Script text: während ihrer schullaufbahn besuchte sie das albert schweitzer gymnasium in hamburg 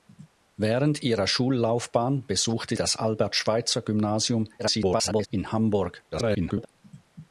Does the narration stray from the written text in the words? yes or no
yes